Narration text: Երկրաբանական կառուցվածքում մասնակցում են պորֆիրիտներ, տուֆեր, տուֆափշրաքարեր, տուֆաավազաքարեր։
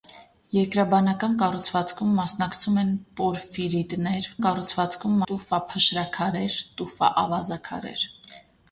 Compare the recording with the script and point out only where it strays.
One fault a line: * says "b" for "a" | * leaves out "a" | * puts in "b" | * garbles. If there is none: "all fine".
* says "կառուցվածքում" for "տուֆեր"